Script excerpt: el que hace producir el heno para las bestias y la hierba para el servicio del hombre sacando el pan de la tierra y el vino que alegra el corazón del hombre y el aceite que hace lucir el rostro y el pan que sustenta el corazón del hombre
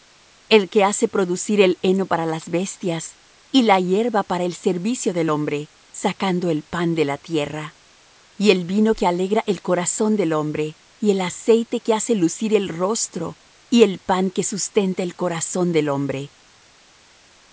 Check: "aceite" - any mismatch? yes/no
no